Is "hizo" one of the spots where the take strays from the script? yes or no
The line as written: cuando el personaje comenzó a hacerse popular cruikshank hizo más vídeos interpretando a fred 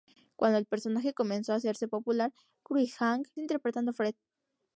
yes